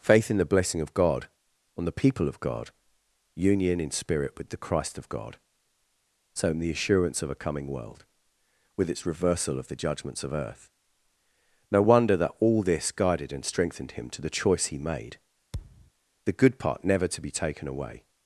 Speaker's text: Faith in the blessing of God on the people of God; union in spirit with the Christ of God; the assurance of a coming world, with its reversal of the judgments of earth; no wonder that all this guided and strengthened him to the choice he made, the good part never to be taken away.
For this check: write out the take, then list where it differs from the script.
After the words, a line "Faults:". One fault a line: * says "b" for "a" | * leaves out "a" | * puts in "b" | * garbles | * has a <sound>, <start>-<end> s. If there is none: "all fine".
Faith in the blessing of God on the people of God; union in spirit with the Christ of God; so in the assurance of a coming world, with its reversal of the judgments of earth; no wonder that all this guided and strengthened him to the choice he made, the good part never to be taken away.
Faults:
* puts in "so in"
* has a thud, 15.5-15.9 s